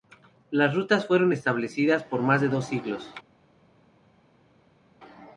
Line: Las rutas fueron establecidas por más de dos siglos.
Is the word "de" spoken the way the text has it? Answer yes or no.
yes